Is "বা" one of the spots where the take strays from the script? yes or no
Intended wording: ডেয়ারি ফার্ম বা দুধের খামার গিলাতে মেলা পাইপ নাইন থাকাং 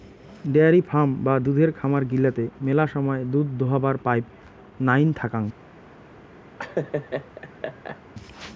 no